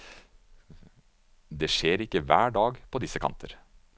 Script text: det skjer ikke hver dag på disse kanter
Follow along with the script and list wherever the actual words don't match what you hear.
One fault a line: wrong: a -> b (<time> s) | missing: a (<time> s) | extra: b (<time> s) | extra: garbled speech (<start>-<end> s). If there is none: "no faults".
no faults